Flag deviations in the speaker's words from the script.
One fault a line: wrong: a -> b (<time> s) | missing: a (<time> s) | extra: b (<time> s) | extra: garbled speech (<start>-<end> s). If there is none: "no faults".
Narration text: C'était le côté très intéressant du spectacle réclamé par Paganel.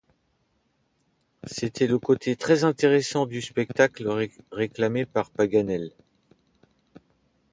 no faults